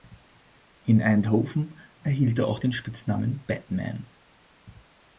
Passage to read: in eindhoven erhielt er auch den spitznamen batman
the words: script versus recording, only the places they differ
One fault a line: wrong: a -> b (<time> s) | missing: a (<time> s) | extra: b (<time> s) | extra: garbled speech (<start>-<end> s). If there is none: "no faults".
no faults